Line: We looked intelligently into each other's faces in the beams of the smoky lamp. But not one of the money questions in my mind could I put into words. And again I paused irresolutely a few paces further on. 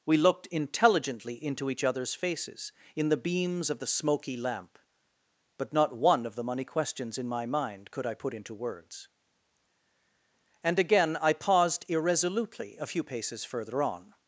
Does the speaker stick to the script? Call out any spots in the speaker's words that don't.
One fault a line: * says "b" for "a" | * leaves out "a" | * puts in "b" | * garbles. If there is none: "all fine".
all fine